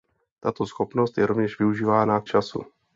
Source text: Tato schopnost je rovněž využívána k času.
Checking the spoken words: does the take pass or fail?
pass